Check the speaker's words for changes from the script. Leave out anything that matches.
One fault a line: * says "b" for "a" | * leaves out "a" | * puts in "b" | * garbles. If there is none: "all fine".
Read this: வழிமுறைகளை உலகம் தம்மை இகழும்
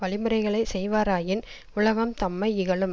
* puts in "செய்வாராயின்"